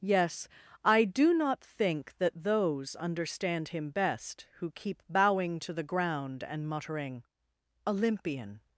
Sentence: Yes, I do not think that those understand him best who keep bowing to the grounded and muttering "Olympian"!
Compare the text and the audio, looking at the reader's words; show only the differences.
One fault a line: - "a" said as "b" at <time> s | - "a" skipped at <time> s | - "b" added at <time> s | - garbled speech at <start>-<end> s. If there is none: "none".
- "grounded" said as "ground" at 5.8 s